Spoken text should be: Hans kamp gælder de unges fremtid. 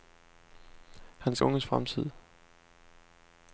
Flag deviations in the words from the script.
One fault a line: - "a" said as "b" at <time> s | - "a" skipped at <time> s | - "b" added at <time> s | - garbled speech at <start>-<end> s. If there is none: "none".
- "kamp gælder de" skipped at 1.4 s